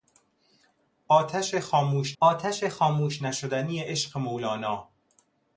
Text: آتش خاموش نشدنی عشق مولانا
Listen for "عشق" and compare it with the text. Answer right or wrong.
right